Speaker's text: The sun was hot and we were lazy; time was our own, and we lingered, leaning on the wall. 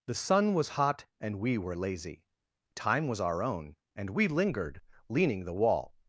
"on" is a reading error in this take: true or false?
true